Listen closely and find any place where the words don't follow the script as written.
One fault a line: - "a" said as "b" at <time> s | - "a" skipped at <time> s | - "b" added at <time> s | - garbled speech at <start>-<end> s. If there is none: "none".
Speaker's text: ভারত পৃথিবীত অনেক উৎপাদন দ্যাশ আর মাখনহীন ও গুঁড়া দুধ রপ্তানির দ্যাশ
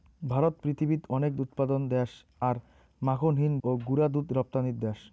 none